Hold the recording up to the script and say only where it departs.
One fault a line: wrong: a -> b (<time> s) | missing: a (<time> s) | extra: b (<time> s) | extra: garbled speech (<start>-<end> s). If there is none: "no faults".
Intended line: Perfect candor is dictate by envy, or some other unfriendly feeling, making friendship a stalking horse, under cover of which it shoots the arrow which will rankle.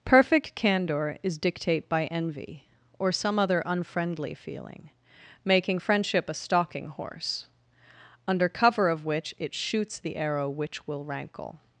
no faults